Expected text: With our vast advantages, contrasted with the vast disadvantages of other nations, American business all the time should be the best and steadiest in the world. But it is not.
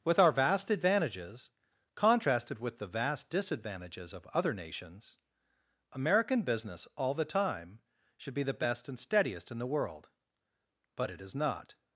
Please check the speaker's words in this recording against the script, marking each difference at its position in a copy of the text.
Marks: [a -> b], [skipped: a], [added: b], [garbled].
With our vast advantages, contrasted with the vast disadvantages of other nations, American business all the time should be the best and steadiest in the world. But it is not.